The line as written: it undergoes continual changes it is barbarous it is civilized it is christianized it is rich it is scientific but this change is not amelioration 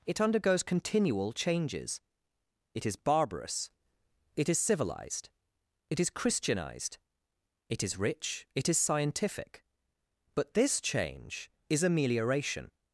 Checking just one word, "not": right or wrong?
wrong